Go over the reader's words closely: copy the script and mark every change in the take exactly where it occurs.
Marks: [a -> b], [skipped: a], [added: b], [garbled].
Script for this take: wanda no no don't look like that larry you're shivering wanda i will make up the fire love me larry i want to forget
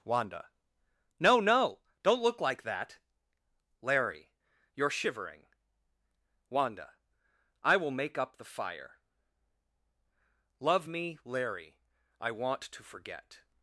wanda no no don't look like that larry you're shivering wanda i will make up the fire love me larry i want to forget